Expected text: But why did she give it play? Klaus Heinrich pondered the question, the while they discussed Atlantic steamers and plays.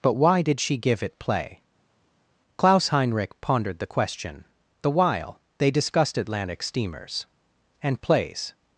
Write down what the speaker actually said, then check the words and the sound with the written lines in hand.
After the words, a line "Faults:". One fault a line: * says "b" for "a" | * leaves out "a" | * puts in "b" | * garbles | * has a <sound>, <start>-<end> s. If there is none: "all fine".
But why did she give it play? Klaus Heinrich pondered the question, the while they discussed Atlantic steamers and plays.
Faults:
all fine